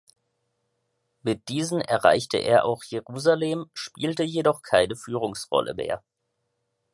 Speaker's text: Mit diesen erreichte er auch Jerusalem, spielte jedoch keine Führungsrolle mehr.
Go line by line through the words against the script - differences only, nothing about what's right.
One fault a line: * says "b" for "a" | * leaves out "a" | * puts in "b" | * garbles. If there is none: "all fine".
all fine